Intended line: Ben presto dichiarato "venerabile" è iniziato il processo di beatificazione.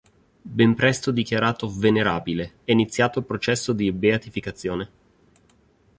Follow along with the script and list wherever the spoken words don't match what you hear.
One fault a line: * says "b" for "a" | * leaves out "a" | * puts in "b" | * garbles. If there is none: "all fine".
all fine